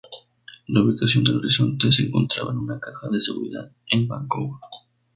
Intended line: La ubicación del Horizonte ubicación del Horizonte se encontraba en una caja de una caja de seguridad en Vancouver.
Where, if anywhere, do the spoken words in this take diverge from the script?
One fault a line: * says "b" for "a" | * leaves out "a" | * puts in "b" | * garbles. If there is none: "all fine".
* leaves out "ubicación del Horizonte"
* leaves out "una caja de"